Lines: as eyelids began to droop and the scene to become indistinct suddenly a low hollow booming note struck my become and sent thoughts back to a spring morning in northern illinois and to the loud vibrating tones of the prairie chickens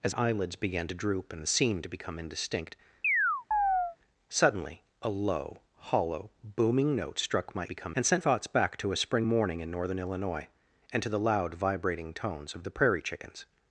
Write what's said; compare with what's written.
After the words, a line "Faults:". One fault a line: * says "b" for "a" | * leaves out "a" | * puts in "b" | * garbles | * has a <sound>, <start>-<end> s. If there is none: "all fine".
as eyelids began to droop and the scene to become indistinct suddenly a low hollow booming note struck my become and sent thoughts back to a spring morning in northern illinois and to the loud vibrating tones of the prairie chickens
Faults:
* has a chirp, 3.0-4.0 s